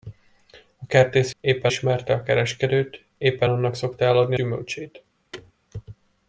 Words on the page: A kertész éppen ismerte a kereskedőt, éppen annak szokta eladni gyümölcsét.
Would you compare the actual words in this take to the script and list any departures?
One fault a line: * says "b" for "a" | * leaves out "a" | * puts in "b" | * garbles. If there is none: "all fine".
all fine